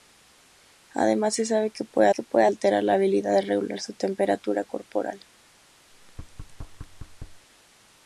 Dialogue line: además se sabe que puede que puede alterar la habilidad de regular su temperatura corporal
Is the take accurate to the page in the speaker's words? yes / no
yes